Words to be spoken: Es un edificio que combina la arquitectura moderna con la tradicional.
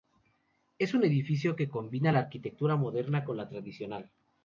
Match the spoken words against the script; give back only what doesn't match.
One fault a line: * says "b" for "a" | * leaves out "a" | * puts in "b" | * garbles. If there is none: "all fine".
all fine